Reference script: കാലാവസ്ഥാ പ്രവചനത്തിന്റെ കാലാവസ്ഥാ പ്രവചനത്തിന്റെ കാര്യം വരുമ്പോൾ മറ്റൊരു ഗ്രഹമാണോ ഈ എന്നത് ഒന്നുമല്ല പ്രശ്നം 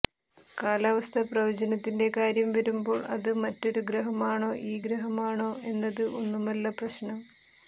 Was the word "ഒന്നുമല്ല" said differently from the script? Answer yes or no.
no